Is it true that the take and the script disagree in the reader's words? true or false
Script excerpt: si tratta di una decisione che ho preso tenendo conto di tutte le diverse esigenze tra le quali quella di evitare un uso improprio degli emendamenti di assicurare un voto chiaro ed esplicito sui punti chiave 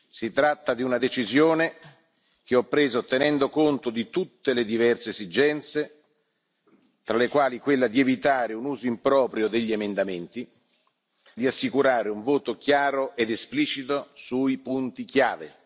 false